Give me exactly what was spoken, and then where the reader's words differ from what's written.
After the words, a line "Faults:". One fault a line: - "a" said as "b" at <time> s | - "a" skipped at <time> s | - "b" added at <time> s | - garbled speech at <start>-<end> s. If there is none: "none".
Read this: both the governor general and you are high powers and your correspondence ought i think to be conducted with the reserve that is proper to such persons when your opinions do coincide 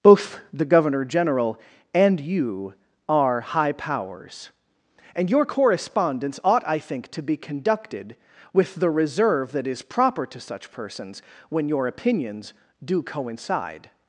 both the governor general and you are high powers and your correspondence ought i think to be conducted with the reserve that is proper to such persons when your opinions do coincide
Faults:
none